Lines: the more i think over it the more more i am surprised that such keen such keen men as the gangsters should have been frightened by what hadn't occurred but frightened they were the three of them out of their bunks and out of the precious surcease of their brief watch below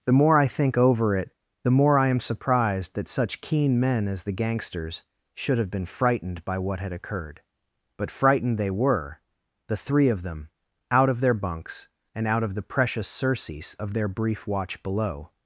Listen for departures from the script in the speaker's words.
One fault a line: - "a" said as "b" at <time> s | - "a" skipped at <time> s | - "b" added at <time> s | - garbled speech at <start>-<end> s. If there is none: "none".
- "more" skipped at 2.0 s
- "such keen" skipped at 3.8 s
- "hadn't" said as "had" at 6.8 s